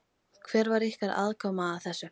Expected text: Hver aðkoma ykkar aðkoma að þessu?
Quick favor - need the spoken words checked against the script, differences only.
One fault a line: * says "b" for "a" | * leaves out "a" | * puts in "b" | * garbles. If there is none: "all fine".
* says "var" for "aðkoma"